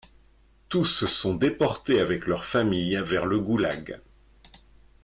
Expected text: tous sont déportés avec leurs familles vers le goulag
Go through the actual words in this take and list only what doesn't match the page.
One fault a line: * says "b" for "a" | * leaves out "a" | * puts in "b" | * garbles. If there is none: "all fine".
all fine